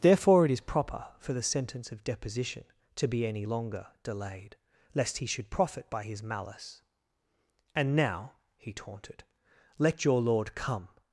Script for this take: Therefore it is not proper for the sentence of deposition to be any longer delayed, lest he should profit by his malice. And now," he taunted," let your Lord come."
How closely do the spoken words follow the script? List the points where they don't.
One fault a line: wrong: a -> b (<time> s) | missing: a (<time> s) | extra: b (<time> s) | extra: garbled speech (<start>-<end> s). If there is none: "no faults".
missing: not (0.6 s)